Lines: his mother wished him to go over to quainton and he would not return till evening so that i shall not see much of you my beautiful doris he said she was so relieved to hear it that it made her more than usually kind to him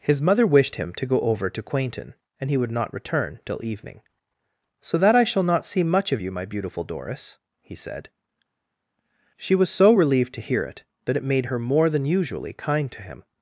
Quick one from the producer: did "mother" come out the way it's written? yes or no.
yes